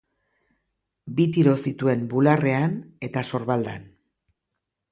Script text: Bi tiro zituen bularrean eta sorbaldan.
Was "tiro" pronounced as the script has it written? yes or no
yes